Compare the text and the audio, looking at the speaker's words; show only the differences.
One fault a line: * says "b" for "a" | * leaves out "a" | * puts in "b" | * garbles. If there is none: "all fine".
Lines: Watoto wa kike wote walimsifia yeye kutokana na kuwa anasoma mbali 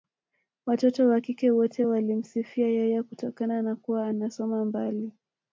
all fine